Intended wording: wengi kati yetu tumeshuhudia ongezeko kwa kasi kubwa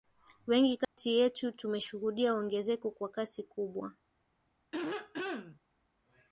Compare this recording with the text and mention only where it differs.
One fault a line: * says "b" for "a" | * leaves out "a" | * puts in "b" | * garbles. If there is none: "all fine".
all fine